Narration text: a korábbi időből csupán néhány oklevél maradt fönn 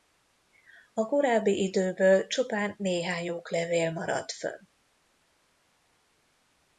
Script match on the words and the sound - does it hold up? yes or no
yes